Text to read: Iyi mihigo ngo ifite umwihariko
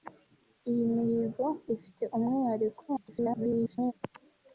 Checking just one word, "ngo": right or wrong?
wrong